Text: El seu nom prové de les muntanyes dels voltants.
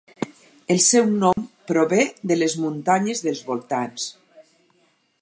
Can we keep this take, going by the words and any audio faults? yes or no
no